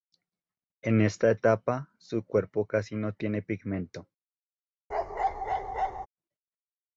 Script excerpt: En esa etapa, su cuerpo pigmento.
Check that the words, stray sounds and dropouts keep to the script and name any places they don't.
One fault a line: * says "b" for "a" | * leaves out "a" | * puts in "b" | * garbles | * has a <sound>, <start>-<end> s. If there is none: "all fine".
* says "esta" for "esa"
* puts in "casi no tiene"
* has a bark, 4.9-6.1 s